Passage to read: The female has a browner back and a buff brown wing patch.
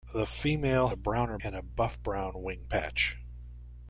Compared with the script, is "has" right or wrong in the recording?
wrong